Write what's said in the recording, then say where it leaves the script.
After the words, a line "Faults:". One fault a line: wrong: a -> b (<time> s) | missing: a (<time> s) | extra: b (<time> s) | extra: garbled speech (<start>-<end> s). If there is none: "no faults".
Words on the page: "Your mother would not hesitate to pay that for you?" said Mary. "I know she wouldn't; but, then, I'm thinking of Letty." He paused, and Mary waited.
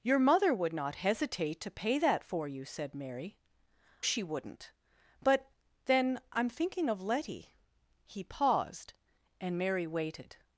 "Your mother would not hesitate to pay that for you?" said Mary. "she wouldn't; but, then, I'm thinking of Letty." He paused, and Mary waited.
Faults:
missing: I know (3.4 s)